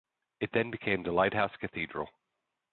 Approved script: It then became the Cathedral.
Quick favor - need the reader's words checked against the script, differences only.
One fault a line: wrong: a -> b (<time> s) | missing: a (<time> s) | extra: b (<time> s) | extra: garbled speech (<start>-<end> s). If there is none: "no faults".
extra: Lighthouse (1.1 s)